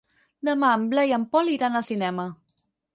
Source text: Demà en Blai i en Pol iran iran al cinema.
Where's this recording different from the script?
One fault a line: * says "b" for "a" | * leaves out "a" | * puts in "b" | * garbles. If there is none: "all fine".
* leaves out "iran"